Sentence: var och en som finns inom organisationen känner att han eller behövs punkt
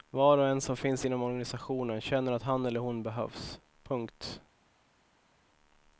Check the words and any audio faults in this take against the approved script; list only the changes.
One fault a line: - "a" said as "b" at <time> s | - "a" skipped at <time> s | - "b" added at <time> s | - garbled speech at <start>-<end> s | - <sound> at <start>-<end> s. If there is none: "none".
- "hon" added at 2.8 s